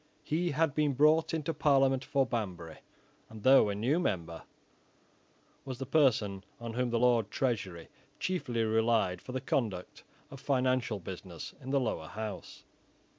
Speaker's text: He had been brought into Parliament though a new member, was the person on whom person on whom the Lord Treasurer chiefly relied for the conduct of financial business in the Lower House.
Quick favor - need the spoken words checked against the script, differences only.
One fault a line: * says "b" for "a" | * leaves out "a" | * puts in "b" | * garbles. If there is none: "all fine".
* puts in "for Banbury and"
* leaves out "person on whom"